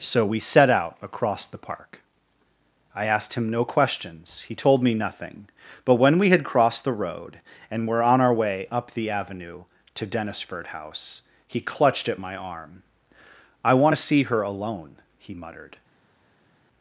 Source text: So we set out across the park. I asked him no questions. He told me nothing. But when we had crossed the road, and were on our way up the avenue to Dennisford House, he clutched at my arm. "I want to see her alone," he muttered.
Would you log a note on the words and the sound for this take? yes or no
no